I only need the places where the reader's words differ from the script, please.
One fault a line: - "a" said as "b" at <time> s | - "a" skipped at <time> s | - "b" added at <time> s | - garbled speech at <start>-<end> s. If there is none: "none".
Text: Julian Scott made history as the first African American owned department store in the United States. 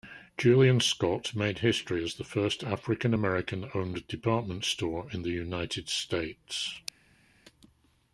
none